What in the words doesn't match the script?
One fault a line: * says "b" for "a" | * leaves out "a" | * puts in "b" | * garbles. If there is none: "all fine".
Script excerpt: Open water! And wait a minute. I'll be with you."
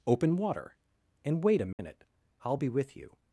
all fine